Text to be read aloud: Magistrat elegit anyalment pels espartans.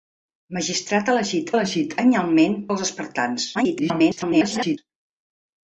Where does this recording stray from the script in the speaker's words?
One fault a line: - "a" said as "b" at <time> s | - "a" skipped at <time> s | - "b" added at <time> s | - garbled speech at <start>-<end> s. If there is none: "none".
- "elegit" added at 1.5 s
- garbled speech at 3.5-4.8 s